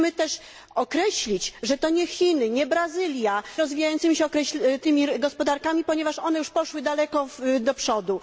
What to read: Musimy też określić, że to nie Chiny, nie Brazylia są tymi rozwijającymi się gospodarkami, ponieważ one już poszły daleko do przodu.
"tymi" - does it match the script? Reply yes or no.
no